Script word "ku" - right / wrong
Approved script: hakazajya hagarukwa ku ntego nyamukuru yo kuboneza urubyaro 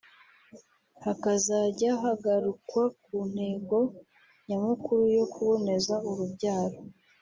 right